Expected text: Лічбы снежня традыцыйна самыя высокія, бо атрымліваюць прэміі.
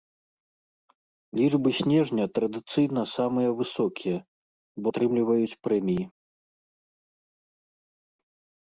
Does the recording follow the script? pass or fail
pass